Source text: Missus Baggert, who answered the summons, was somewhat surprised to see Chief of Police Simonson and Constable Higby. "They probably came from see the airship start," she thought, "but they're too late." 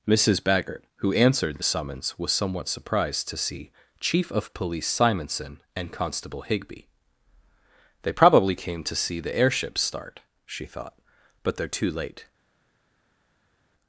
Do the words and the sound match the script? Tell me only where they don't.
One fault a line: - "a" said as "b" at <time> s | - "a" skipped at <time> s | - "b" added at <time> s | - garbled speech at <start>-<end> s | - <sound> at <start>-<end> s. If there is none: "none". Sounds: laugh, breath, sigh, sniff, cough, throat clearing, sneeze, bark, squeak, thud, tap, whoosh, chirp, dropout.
- "from" said as "to" at 8.8 s